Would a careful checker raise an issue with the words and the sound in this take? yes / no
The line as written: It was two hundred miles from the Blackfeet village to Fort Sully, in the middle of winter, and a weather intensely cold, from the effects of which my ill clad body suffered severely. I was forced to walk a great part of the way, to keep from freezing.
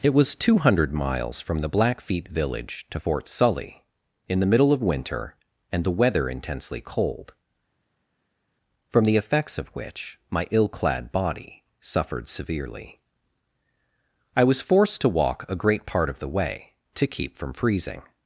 yes